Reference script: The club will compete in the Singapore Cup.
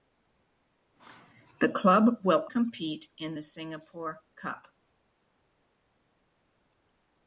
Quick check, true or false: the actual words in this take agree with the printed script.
true